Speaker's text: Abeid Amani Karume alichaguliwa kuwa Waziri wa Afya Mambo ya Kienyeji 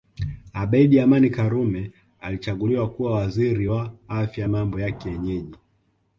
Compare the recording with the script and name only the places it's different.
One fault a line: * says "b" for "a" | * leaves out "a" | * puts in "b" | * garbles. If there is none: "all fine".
all fine